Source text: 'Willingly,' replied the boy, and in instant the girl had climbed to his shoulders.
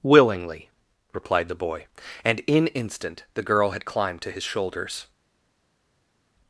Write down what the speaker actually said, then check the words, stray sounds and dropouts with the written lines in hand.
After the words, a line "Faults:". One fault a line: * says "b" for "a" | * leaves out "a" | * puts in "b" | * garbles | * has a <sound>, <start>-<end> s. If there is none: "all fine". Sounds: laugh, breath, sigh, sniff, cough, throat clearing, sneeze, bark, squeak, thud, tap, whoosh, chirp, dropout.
'Willingly,' replied the boy, and in instant the girl had climbed to his shoulders.
Faults:
all fine